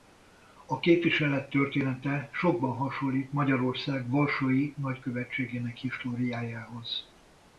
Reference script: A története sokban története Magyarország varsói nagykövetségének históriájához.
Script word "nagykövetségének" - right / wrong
right